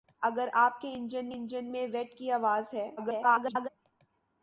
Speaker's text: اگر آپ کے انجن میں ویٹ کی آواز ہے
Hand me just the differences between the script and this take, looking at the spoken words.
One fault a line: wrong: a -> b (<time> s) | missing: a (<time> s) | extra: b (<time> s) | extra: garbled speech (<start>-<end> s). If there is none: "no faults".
extra: انجن (1.3 s)
extra: garbled speech (3.0-3.7 s)